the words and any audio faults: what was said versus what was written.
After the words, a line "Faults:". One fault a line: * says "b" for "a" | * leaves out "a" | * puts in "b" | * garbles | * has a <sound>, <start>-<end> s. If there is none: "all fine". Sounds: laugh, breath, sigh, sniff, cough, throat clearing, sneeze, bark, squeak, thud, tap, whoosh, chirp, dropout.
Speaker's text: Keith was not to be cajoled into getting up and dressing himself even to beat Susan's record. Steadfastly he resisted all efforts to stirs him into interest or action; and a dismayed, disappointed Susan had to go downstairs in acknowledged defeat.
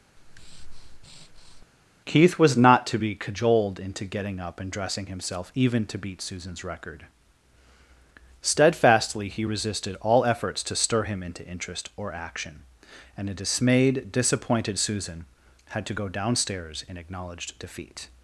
Keith was not to be cajoled into getting up and dressing himself even to beat Susan's record. Steadfastly he resisted all efforts to stir him into interest or action; and a dismayed, disappointed Susan had to go downstairs in acknowledged defeat.
Faults:
* has a breath, 0.2-1.7 s
* says "stir" for "stirs"